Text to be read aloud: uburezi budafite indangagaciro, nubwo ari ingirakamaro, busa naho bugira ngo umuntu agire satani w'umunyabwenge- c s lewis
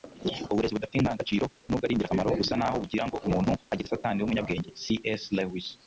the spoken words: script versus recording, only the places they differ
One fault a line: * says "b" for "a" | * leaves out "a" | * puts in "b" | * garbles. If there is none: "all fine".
all fine